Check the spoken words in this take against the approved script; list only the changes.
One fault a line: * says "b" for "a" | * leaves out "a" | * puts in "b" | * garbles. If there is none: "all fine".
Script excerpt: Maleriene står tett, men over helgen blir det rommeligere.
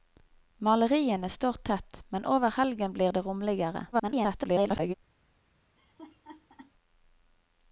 * garbles